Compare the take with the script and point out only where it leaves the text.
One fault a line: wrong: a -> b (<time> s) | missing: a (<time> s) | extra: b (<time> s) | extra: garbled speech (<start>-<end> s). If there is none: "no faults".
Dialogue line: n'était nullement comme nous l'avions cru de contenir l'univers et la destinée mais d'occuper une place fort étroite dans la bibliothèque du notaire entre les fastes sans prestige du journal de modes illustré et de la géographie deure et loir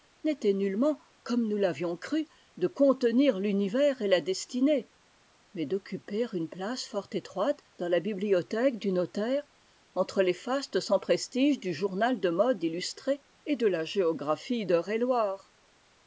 no faults